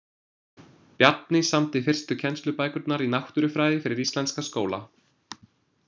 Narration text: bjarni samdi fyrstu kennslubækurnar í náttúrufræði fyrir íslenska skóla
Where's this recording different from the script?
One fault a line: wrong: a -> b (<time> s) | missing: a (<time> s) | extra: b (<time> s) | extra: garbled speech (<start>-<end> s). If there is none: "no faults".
no faults